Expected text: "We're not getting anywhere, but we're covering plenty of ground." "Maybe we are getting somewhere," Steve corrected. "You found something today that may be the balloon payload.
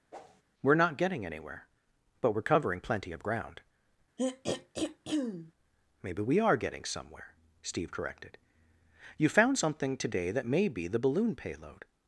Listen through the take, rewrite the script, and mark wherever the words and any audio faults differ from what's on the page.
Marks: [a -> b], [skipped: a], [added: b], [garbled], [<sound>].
[whoosh] "We're not getting anywhere, but we're covering plenty of ground." [throat clearing] "Maybe we are getting somewhere," Steve corrected. "You found something today that may be the balloon payload.